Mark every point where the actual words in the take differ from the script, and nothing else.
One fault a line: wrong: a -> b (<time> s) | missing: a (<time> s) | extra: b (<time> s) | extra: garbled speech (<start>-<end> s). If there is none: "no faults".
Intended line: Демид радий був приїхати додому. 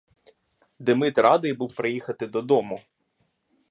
no faults